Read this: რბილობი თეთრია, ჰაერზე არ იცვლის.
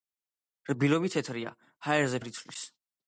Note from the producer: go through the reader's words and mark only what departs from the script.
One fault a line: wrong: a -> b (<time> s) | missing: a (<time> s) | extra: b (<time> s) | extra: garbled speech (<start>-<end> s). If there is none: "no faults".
no faults